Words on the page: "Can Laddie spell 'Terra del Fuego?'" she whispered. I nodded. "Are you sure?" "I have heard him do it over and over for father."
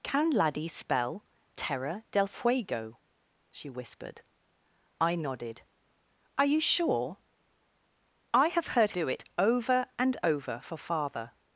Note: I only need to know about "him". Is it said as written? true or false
false